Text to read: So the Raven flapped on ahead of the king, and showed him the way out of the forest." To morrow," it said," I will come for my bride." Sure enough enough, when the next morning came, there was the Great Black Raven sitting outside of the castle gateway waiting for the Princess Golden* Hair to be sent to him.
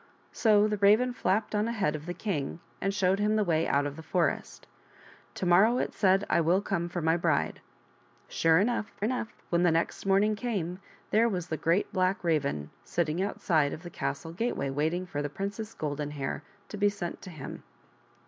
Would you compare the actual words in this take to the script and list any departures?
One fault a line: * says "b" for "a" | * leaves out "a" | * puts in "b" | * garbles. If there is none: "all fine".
all fine